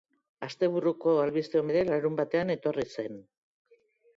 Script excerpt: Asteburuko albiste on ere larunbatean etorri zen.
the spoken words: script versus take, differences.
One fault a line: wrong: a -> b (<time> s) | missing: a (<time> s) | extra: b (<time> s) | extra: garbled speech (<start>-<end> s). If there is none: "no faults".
no faults